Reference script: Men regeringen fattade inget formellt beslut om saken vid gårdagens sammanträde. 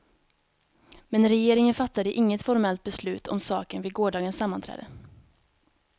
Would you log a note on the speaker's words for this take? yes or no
no